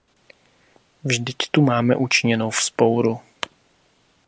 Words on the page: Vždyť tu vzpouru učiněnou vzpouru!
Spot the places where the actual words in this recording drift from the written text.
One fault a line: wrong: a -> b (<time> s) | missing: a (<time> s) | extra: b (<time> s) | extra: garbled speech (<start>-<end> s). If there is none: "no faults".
wrong: vzpouru -> máme (1.6 s)